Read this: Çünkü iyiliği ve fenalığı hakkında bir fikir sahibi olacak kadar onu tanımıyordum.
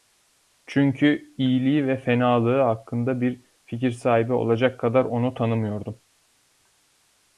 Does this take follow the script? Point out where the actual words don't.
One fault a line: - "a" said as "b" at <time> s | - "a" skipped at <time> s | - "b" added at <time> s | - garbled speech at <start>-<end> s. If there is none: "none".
none